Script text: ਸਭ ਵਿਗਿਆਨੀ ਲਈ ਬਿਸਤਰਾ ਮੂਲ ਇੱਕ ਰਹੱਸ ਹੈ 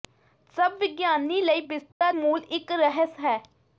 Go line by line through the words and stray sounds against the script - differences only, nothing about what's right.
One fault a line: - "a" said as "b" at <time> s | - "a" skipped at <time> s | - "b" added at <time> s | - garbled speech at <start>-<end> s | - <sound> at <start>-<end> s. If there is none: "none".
- dropout at 1.9-2.0 s